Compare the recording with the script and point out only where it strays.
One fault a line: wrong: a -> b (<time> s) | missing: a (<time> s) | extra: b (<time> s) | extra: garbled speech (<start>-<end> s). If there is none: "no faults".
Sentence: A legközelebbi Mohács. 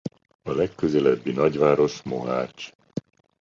extra: nagyváros (1.3 s)